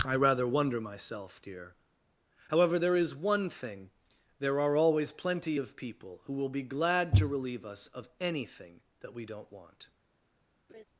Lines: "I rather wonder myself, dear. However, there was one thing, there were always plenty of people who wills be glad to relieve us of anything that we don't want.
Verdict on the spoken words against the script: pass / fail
fail